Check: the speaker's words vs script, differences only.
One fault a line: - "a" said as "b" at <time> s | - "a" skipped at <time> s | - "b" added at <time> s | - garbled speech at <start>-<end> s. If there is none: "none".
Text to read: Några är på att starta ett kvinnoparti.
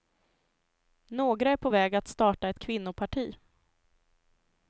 - "väg" added at 1.7 s